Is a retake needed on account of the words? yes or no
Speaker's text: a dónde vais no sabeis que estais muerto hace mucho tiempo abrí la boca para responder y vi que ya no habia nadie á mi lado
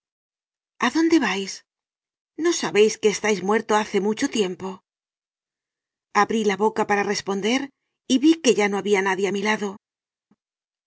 no